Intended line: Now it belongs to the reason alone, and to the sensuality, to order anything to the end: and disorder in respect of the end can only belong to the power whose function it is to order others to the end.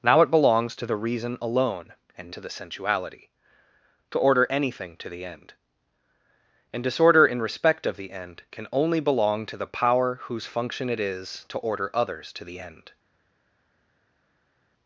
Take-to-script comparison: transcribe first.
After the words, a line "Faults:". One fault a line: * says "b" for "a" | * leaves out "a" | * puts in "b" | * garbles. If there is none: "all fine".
Now it belongs to the reason alone, and to the sensuality, to order anything to the end: and disorder in respect of the end can only belong to the power whose function it is to order others to the end.
Faults:
all fine